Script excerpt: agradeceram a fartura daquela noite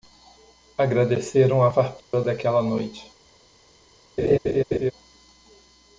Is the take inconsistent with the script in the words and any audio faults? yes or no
yes